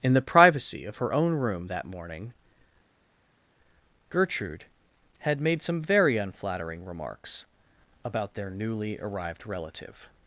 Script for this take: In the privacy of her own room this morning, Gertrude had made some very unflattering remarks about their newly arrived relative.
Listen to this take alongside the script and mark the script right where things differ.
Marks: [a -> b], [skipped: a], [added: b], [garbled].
In the privacy of her own room [this -> that] morning, Gertrude had made some very unflattering remarks about their newly arrived relative.